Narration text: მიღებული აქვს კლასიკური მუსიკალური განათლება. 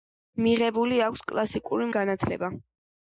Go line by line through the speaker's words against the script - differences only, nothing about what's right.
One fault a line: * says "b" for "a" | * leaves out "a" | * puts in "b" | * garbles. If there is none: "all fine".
* leaves out "მუსიკალური"